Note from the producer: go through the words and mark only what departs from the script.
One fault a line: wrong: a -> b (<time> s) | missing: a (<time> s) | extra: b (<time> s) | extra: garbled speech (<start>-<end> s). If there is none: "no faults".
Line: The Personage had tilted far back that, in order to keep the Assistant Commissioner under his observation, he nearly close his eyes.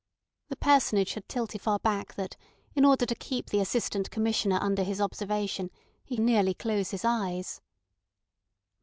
no faults